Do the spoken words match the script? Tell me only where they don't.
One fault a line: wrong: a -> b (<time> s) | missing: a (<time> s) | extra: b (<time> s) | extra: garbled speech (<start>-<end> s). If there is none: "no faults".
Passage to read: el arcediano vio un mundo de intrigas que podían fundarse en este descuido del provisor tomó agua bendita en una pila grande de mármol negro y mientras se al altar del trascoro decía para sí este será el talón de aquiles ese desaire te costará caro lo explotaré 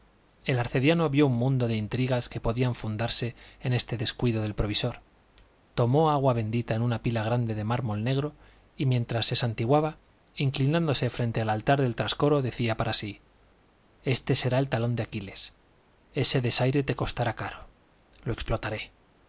extra: santiguaba inclinándose frente (9.3 s)